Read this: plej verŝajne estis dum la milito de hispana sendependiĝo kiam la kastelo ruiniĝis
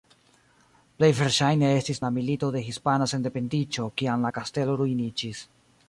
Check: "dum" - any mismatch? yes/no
yes